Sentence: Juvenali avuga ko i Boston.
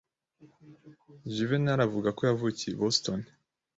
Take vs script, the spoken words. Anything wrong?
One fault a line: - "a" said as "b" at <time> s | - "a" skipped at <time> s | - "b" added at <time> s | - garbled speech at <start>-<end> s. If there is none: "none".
- "yavukiye" added at 2.3 s